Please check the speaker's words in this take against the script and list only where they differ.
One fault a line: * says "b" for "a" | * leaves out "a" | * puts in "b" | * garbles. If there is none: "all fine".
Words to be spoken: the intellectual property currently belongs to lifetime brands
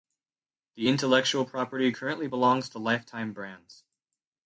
all fine